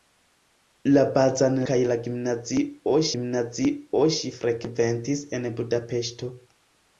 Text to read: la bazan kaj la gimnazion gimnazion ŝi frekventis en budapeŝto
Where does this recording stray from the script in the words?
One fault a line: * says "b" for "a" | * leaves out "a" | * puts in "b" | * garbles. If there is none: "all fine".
all fine